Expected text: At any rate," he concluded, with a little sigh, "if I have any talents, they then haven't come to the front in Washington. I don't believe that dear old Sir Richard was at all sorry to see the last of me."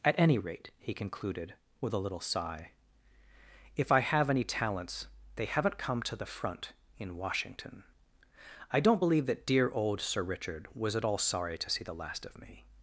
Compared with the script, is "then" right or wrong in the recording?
wrong